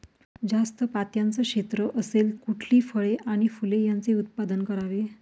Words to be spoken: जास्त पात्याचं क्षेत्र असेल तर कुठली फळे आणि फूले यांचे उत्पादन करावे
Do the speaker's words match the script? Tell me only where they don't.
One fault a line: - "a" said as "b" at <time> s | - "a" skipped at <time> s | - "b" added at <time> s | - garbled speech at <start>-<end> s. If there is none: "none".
- "तर" skipped at 2.3 s